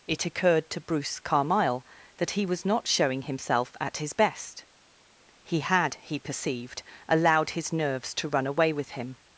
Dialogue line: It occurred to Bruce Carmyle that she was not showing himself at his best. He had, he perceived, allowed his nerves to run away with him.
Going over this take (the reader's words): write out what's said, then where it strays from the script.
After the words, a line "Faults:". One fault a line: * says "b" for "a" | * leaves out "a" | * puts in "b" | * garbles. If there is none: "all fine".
It occurred to Bruce Carmyle that he was not showing himself at his best. He had, he perceived, allowed his nerves to run away with him.
Faults:
* says "he" for "she"